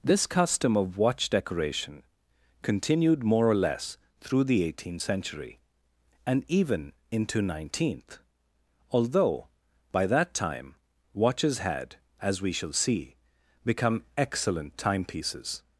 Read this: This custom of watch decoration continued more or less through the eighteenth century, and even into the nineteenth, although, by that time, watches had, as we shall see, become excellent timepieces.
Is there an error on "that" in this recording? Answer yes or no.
no